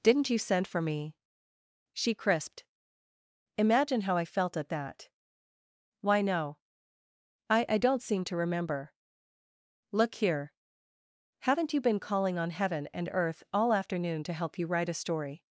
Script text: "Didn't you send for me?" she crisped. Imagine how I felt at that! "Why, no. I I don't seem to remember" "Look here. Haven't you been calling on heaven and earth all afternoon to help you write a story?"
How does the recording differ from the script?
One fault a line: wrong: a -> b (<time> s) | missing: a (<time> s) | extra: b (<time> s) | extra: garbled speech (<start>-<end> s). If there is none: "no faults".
no faults